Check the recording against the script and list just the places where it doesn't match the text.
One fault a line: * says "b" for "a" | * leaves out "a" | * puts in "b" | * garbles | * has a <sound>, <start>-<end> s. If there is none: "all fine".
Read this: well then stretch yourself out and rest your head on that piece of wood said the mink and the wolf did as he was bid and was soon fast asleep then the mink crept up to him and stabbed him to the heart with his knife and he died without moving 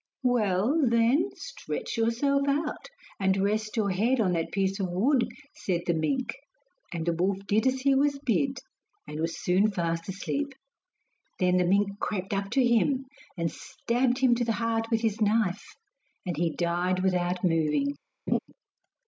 * has a laugh, 18.3-18.4 s